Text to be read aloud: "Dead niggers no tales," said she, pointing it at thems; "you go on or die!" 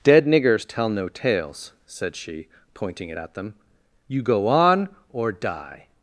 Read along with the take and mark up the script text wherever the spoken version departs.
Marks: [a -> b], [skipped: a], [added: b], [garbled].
"Dead niggers [added: tell] no tales," said she, pointing it at [thems; -> them] "you go on or die!"